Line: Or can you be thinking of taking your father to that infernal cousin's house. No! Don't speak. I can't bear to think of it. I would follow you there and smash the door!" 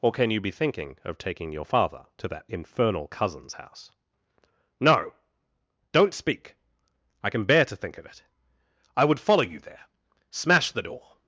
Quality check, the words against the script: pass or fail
fail